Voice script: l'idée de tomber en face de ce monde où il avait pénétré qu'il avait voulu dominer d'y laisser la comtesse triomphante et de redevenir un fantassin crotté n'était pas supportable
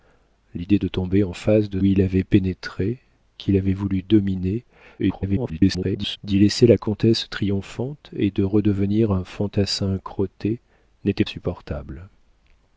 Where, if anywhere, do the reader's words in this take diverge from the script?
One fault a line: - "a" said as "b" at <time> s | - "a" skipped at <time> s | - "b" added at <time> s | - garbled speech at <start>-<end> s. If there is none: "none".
- "ce monde où" skipped at 1.8 s
- garbled speech at 5.0-6.2 s
- "pas" skipped at 11.2 s